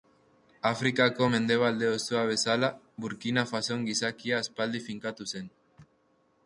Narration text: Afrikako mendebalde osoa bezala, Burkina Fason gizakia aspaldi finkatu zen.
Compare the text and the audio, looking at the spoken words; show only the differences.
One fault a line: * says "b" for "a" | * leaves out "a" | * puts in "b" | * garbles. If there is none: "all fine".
all fine